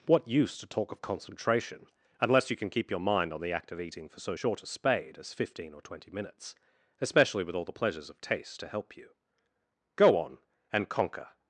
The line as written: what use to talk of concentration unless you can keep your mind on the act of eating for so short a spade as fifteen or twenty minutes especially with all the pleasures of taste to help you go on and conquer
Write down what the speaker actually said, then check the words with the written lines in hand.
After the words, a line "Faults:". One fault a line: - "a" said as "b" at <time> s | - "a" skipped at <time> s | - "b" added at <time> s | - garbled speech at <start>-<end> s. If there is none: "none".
what use to talk of concentration unless you can keep your mind on the act of eating for so short a spade as fifteen or twenty minutes especially with all the pleasures of taste to help you go on and conquer
Faults:
none